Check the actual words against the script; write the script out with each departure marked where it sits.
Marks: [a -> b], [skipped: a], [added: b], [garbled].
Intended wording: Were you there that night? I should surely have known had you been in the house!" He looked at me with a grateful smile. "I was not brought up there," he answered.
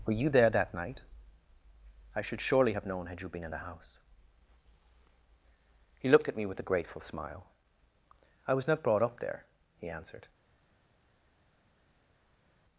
Were you there that night? I should surely have known had you been in the house!" He looked at me with a grateful smile. "I was not brought up there," he answered.